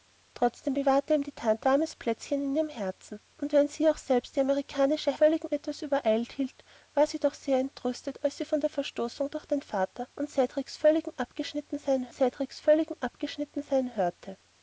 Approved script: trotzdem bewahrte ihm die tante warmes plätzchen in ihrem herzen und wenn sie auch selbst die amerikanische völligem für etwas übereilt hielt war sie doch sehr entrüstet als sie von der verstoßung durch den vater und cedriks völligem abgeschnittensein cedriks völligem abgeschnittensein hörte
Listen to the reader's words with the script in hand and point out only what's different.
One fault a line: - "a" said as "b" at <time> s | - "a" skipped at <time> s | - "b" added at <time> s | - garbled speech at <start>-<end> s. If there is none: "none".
none